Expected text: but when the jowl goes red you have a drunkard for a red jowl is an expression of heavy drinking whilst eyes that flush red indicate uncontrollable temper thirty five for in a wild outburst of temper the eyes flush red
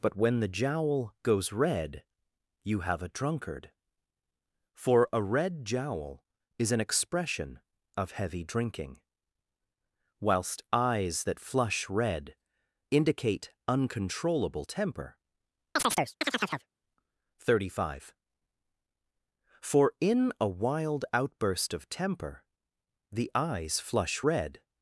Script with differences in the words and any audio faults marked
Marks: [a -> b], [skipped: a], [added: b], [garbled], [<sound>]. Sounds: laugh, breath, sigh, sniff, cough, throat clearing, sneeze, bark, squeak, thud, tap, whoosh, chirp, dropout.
but when the jowl goes red you have a drunkard for a red jowl is an expression of heavy drinking whilst eyes that flush red indicate uncontrollable temper [chirp] thirty five for in a wild outburst of temper the eyes flush red